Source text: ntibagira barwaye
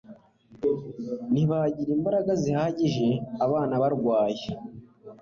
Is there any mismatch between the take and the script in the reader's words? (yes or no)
yes